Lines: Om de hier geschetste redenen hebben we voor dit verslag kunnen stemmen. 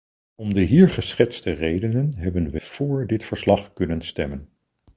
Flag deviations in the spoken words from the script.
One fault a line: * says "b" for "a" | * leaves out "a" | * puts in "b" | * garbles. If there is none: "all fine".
all fine